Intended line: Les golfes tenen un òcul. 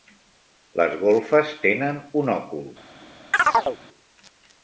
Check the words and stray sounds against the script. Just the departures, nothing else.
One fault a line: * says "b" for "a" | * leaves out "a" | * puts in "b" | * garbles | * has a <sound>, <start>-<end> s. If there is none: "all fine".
* has a chirp, 3.3-3.8 s